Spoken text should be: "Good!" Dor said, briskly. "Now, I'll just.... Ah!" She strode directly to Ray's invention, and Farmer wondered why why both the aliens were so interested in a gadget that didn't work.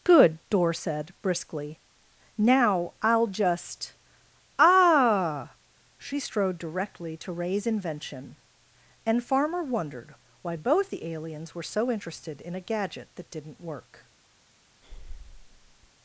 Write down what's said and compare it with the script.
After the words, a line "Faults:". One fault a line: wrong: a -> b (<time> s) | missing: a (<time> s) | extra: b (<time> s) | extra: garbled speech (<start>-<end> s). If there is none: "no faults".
"Good!" Dor said, briskly. "Now, I'll just.... Ah!" She strode directly to Ray's invention, and Farmer wondered why both the aliens were so interested in a gadget that didn't work.
Faults:
missing: why (10.5 s)